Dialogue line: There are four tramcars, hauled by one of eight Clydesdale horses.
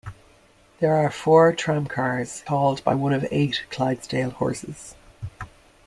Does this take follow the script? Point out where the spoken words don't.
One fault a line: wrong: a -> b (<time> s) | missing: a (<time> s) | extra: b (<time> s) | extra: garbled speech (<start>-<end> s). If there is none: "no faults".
no faults